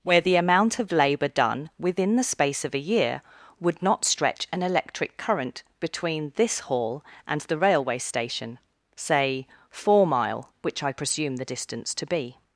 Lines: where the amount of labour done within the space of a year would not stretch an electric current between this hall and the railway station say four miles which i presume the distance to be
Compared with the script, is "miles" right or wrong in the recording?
wrong